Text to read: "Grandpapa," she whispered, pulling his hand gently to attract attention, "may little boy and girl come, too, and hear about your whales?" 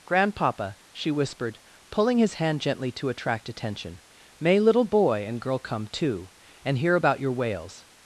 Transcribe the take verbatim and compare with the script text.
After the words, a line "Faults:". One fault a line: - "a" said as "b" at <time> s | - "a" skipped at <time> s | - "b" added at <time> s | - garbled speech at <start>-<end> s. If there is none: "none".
"Grandpapa," she whispered, pulling his hand gently to attract attention, "may little boy and girl come, too, and hear about your whales?"
Faults:
none